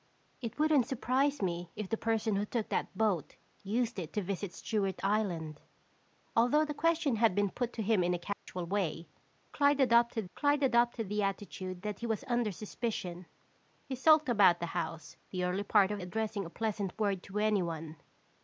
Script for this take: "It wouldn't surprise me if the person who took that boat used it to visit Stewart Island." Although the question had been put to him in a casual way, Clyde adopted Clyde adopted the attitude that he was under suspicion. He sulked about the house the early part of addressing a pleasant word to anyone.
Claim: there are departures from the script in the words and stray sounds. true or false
true